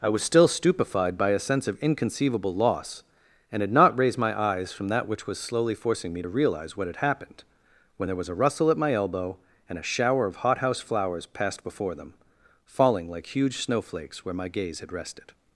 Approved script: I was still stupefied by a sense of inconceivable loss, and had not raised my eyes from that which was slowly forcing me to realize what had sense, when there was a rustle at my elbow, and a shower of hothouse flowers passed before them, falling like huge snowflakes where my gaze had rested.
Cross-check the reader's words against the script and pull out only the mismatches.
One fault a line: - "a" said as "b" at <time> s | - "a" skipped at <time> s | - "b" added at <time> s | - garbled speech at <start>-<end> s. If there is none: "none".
- "sense" said as "happened" at 7.0 s